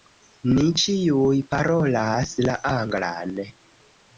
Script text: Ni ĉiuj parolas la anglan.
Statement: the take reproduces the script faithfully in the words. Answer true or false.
true